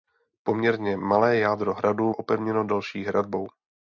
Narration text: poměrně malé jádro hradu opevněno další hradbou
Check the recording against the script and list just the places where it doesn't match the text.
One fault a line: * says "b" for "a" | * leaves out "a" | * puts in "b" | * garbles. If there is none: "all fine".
all fine